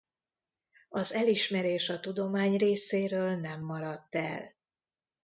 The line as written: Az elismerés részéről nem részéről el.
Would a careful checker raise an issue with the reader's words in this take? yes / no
yes